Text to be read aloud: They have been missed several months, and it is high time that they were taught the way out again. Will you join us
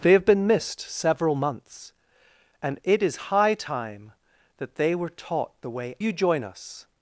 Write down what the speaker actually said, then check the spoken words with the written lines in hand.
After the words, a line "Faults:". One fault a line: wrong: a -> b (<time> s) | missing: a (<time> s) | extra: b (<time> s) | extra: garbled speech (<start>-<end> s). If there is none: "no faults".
They have been missed several months, and it is high time that they were taught the way you join us
Faults:
missing: out again Will (6.0 s)